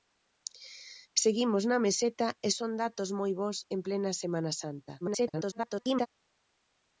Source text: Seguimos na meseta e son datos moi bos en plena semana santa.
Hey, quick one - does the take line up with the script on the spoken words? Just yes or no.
no